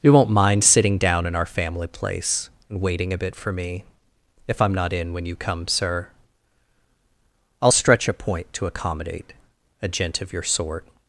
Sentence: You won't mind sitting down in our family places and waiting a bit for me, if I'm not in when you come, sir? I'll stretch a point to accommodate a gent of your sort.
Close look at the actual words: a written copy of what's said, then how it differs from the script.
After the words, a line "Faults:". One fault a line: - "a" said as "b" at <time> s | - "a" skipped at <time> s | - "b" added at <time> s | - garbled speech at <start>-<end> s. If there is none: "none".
You won't mind sitting down in our family place and waiting a bit for me, if I'm not in when you come, sir? I'll stretch a point to accommodate a gent of your sort.
Faults:
- "places" said as "place" at 1.9 s